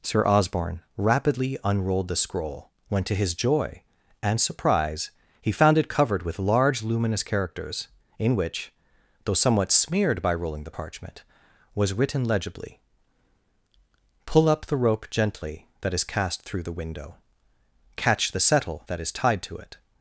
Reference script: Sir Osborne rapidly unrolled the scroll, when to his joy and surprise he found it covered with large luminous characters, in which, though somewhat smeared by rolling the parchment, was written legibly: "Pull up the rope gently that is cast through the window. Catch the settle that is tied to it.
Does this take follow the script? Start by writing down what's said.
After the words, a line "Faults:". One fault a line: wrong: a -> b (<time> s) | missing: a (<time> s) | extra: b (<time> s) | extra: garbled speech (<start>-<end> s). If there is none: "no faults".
Sir Osborne rapidly unrolled the scroll, when to his joy and surprise he found it covered with large luminous characters, in which, though somewhat smeared by rolling the parchment, was written legibly: "Pull up the rope gently that is cast through the window. Catch the settle that is tied to it.
Faults:
no faults